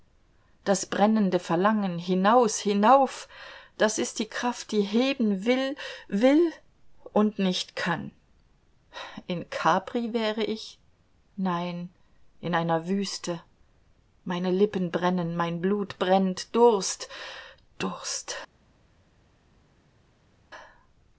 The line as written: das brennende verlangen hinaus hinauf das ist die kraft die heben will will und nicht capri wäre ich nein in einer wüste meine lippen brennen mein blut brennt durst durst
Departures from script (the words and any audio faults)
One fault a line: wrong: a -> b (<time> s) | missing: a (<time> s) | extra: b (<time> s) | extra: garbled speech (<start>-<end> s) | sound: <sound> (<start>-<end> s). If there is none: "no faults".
extra: kann in (7.8 s)